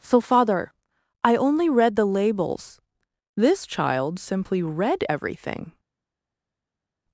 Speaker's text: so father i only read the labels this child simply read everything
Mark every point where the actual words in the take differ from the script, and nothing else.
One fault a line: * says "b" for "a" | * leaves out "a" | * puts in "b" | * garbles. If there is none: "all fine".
all fine